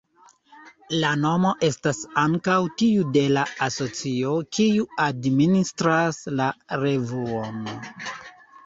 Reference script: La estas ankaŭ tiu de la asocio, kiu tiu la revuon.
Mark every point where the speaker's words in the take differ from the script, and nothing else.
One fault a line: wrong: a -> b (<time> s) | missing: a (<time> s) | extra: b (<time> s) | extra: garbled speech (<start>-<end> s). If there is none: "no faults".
extra: nomo (1.2 s)
wrong: tiu -> administras (5.1 s)